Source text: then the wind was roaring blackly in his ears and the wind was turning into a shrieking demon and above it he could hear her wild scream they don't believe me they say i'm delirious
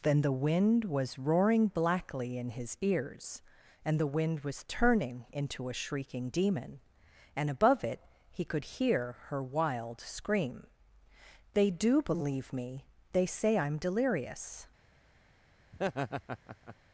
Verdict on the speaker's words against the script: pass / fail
fail